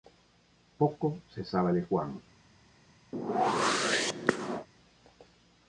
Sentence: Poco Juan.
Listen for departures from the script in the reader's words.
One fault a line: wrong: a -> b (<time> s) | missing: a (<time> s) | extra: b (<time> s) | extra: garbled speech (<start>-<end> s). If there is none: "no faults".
extra: se sabe de (1.3 s)